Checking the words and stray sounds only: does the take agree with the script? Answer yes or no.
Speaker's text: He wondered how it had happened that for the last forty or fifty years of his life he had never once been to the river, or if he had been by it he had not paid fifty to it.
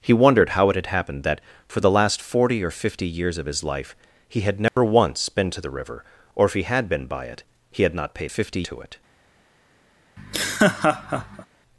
no